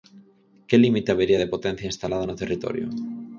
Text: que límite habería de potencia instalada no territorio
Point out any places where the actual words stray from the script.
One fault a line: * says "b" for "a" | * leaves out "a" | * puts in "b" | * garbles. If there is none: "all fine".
all fine